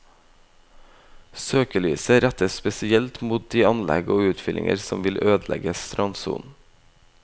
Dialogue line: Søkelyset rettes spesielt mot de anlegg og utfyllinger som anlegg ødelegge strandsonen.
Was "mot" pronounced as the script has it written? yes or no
yes